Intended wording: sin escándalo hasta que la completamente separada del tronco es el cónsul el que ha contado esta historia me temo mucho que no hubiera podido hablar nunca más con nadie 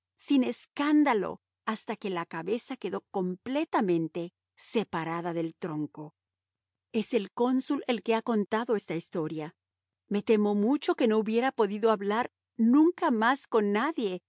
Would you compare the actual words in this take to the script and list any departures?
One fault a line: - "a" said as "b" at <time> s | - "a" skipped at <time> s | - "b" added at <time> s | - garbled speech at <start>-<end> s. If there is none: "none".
- "cabeza quedó" added at 2.2 s